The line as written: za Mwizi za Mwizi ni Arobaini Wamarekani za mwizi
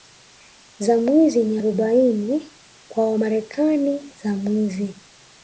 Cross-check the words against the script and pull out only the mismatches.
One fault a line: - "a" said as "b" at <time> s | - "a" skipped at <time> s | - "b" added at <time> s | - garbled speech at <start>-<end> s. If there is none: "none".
- "za Mwizi" skipped at 1.4 s
- "kwa" added at 2.9 s